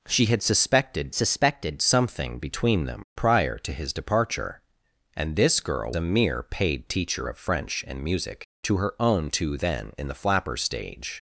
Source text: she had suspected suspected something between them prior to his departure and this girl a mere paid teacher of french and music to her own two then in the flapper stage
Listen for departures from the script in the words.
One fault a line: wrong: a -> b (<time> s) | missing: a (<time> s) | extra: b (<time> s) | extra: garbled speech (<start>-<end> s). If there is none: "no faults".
no faults